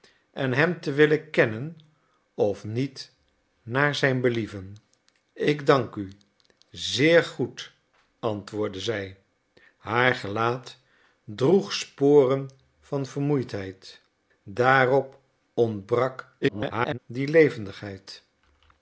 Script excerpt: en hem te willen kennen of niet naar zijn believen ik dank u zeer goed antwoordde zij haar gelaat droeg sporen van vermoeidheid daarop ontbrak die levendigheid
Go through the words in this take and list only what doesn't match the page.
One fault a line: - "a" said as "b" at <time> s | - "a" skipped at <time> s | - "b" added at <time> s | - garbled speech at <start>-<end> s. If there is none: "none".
- garbled speech at 16.4-17.0 s